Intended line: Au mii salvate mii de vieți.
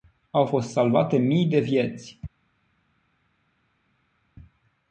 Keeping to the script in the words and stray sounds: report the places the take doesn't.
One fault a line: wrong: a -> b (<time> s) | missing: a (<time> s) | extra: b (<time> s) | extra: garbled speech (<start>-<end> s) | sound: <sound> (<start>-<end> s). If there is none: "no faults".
wrong: mii -> fost (0.4 s)